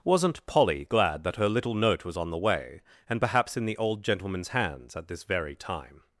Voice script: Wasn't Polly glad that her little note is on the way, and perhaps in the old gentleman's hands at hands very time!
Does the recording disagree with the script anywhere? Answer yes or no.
yes